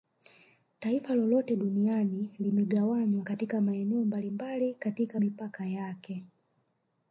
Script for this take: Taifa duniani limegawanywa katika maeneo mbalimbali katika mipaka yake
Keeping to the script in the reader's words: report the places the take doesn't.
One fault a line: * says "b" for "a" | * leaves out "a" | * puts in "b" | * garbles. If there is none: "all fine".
* puts in "lolote"